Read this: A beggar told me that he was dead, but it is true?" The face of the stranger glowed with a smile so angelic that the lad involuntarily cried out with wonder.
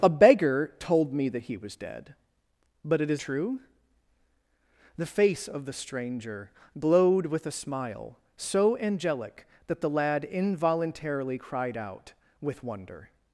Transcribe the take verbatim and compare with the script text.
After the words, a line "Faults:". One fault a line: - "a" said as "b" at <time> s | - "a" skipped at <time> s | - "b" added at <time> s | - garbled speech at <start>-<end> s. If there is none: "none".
A beggar told me that he was dead, but it is true?" The face of the stranger glowed with a smile so angelic that the lad involuntarily cried out with wonder.
Faults:
none